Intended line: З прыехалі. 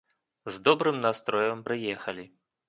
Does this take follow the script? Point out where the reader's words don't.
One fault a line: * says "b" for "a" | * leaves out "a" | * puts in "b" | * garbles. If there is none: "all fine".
* puts in "добрым настроем"